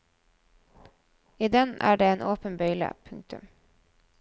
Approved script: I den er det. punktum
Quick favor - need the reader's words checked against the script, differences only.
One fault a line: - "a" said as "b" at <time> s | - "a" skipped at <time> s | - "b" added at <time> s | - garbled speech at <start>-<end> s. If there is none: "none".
- "en åpen bøyle" added at 2.1 s